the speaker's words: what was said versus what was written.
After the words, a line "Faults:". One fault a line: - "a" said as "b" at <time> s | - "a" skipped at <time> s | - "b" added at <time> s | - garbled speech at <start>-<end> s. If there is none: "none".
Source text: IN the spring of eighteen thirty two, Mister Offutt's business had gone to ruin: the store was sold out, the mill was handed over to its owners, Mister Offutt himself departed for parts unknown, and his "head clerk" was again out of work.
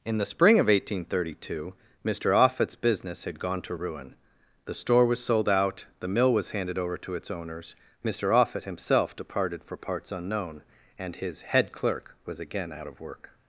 IN the spring of eighteen thirty two, Mister Offutt's business had gone to ruin: the store was sold out, the mill was handed over to its owners, Mister Offutt himself departed for parts unknown, and his "head clerk" was again out of work.
Faults:
none